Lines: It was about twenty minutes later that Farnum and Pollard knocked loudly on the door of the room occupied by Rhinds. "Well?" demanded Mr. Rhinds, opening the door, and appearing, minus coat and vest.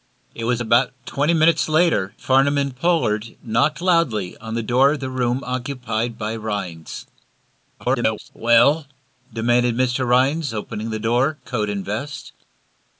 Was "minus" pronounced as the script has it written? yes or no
no